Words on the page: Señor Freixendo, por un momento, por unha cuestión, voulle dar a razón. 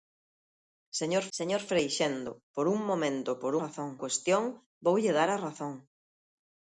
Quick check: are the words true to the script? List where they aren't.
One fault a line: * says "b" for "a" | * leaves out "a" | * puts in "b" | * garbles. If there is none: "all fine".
* puts in "señor"
* says "razón" for "unha"